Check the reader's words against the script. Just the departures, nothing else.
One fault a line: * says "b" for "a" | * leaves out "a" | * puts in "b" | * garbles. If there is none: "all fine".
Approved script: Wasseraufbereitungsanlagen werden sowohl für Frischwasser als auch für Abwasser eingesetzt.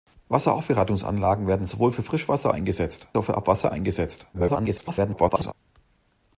* says "eingesetzt" for "als"
* garbles